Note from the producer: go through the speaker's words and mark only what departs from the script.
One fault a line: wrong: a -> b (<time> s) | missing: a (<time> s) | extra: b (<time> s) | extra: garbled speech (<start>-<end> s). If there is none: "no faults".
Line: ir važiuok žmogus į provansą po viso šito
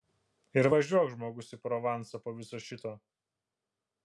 no faults